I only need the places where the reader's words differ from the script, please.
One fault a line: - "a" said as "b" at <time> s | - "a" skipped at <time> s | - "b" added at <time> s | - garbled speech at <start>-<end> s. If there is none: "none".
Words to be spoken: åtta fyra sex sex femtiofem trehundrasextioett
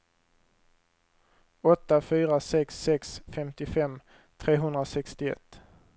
none